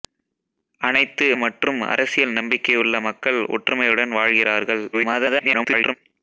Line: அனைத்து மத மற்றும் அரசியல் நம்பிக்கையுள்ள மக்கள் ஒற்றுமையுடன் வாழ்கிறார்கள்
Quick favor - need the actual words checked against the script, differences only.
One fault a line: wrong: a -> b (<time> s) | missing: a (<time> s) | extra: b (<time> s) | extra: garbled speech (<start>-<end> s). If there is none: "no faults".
missing: மத (1.3 s)
extra: garbled speech (4.9-5.9 s)